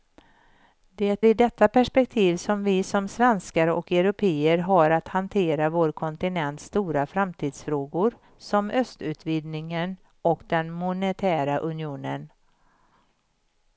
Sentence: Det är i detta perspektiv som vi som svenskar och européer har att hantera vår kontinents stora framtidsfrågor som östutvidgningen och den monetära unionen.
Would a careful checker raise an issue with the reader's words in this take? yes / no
yes